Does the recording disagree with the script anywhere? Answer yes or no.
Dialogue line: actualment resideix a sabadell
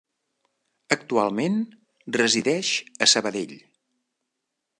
no